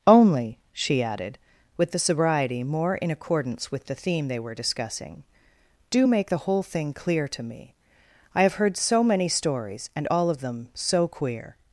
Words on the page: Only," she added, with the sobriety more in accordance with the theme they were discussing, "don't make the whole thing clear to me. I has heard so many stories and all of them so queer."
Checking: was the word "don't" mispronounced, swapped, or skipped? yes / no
yes